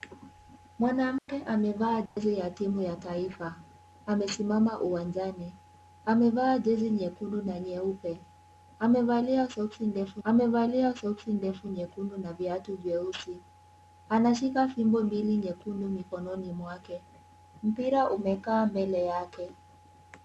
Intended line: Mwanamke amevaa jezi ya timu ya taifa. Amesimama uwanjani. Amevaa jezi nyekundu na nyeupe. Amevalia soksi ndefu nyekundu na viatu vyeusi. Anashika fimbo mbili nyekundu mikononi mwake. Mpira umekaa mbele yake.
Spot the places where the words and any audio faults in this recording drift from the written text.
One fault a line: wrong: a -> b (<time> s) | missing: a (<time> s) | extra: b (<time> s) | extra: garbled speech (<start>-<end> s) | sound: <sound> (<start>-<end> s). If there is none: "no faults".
sound: dropout (1.2-1.3 s)
sound: dropout (2.1-2.2 s)
extra: amevalia soksi ndefu (10.2 s)